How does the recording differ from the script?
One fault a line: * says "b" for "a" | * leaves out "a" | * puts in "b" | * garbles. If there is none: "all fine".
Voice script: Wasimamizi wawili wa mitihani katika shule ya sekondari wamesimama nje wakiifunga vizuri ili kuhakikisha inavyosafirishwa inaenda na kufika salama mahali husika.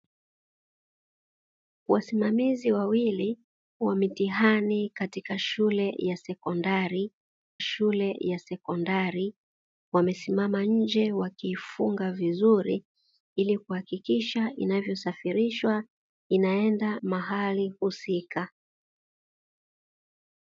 * puts in "shule ya sekondari"
* leaves out "na kufika salama"